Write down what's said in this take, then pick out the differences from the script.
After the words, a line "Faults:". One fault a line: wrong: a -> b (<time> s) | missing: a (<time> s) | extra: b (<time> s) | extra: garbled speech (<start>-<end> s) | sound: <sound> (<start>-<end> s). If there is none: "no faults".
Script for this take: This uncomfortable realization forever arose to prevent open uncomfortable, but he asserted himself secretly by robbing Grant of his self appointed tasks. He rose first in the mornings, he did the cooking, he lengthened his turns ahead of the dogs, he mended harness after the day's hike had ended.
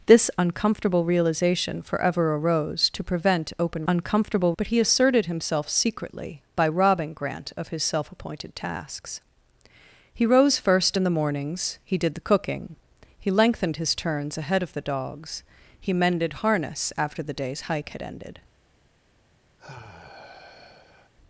This uncomfortable realization forever arose to prevent open uncomfortable, but he asserted himself secretly by robbing Grant of his self appointed tasks. He rose first in the mornings, he did the cooking, he lengthened his turns ahead of the dogs, he mended harness after the day's hike had ended.
Faults:
sound: sigh (19.6-21.1 s)